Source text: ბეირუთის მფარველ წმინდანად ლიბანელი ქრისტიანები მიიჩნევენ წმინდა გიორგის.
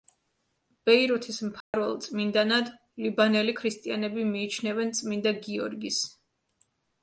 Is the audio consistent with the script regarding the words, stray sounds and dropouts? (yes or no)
no